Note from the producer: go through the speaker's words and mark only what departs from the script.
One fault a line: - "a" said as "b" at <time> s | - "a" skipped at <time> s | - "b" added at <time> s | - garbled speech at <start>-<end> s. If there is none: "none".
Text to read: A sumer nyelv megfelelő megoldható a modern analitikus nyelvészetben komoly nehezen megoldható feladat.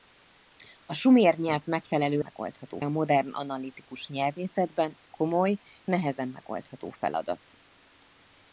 none